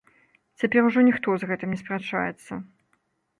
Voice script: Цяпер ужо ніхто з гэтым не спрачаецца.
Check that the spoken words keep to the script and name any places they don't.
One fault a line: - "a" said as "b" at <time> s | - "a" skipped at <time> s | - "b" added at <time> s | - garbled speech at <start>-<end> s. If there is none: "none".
none